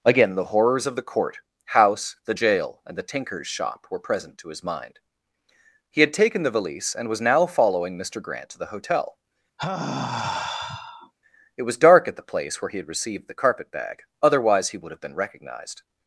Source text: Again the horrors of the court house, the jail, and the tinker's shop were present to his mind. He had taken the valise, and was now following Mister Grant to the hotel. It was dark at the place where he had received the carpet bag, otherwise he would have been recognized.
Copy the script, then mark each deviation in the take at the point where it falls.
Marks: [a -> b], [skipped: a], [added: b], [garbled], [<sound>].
Again the horrors of the court house, the jail, and the tinker's shop were present to his mind. He had taken the valise, and was now following Mister Grant to the hotel. [sigh] It was dark at the place where he had received the carpet bag, otherwise he would have been recognized.